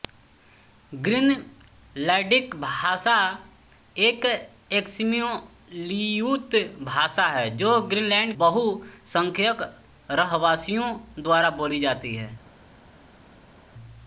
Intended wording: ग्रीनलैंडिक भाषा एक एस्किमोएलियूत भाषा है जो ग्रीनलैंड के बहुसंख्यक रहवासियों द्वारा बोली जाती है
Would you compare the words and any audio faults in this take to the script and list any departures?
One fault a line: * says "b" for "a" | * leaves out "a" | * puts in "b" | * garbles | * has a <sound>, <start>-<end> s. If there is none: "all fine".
* leaves out "के"